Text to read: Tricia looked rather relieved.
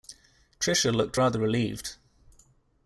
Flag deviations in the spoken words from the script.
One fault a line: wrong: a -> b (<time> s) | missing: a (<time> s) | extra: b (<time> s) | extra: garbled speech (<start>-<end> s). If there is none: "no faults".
no faults